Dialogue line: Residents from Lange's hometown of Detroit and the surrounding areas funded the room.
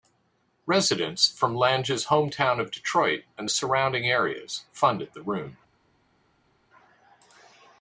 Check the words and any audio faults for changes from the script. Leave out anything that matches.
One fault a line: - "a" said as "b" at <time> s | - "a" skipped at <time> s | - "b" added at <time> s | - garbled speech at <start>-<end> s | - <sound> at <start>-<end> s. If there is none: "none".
none